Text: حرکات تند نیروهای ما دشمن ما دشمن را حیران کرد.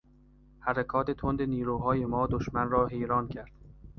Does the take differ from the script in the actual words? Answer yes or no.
yes